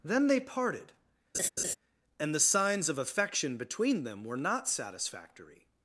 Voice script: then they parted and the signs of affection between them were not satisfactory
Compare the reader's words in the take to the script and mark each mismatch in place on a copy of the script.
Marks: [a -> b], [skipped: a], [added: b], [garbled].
then they parted and the signs of affection between them were not satisfactory